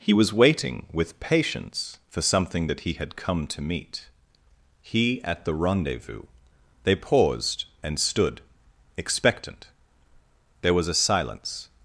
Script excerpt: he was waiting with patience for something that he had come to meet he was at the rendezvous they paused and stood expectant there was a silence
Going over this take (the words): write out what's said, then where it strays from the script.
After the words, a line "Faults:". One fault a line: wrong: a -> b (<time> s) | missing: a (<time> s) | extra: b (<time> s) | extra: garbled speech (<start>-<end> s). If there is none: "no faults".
he was waiting with patience for something that he had come to meet he at the rendezvous they paused and stood expectant there was a silence
Faults:
missing: was (5.2 s)